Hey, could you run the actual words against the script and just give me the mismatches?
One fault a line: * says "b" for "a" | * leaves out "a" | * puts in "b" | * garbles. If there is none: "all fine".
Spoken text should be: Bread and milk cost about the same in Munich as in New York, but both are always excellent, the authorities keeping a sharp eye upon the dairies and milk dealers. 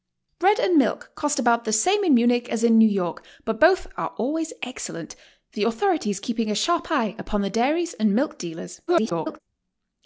* garbles